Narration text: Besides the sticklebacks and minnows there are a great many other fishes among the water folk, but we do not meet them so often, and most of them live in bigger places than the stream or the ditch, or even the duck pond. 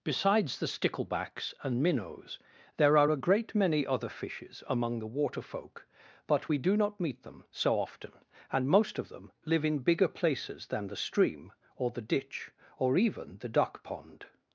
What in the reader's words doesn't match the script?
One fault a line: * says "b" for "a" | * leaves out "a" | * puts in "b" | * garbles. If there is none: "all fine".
all fine